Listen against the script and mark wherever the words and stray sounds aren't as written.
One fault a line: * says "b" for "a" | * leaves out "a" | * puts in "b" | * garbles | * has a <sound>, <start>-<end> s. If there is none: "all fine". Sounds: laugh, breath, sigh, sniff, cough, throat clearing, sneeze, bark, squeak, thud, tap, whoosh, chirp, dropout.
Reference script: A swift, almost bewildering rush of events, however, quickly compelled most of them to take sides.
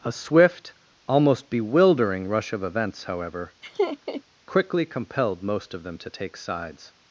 * has a laugh, 3.6-4.2 s